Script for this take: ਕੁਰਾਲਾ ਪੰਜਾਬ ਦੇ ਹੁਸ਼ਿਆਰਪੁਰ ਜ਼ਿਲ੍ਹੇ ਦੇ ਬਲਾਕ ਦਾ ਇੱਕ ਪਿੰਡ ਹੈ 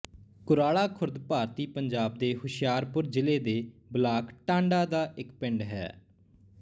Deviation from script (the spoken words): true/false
true